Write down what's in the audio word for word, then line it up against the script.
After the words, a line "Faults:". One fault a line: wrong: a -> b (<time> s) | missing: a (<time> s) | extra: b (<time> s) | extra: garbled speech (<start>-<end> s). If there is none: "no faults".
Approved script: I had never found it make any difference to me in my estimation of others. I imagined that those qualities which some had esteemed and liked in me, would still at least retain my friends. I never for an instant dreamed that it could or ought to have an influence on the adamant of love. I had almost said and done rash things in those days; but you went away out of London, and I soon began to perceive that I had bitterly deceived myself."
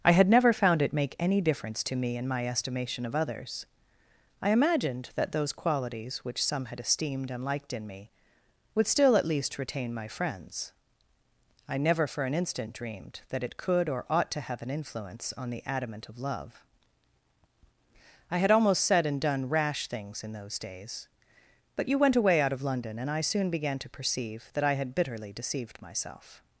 I had never found it make any difference to me in my estimation of others. I imagined that those qualities which some had esteemed and liked in me, would still at least retain my friends. I never for an instant dreamed that it could or ought to have an influence on the adamant of love. I had almost said and done rash things in those days; but you went away out of London, and I soon began to perceive that I had bitterly deceived myself."
Faults:
no faults